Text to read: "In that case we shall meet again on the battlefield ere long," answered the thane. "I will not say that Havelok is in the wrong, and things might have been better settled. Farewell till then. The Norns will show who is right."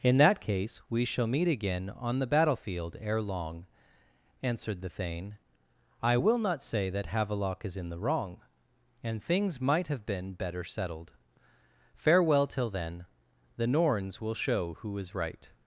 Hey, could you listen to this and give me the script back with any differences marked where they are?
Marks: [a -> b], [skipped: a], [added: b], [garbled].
"In that case we shall meet again on the battlefield ere long," answered the thane. "I will not say that Havelok is in the wrong, and things might have been better settled. Farewell till then. The Norns will show who is right."